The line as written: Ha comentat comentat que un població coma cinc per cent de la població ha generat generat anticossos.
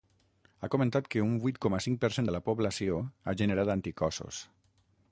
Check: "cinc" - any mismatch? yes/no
no